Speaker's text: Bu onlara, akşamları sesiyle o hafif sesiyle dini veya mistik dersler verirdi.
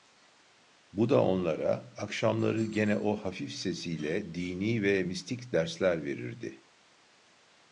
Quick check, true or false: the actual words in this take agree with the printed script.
false